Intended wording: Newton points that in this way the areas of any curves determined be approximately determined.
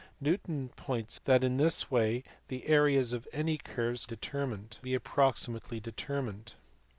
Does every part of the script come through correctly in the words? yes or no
yes